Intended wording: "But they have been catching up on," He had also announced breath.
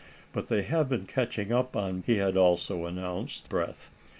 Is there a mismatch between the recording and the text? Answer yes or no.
no